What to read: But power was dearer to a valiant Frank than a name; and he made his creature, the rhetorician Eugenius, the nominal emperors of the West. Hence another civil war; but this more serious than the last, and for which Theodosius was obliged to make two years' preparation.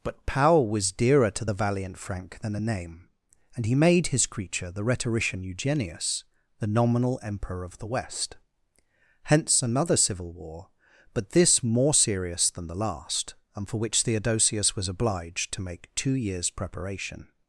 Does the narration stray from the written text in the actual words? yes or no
yes